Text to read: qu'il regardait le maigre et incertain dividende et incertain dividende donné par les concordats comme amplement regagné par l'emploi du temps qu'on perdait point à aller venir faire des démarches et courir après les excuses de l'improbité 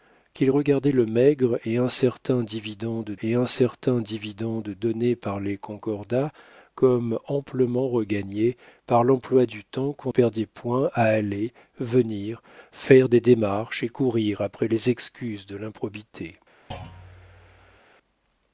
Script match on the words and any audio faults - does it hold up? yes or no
no